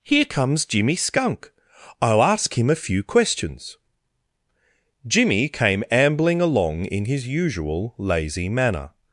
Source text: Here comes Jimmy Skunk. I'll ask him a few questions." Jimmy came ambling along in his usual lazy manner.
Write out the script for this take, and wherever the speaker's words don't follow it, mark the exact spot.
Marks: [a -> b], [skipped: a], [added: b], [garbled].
Here comes Jimmy Skunk. I'll ask him a few questions." Jimmy came ambling along in his usual lazy manner.